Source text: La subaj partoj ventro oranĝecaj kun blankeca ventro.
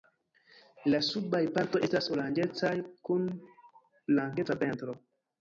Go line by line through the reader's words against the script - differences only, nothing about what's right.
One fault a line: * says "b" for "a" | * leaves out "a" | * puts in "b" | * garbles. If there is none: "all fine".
* says "estas" for "ventro"